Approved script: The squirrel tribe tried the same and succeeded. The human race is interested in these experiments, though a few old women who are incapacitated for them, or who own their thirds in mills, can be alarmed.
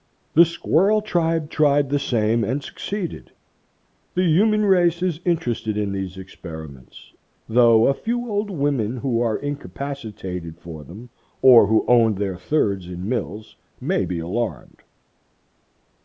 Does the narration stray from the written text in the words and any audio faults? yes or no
yes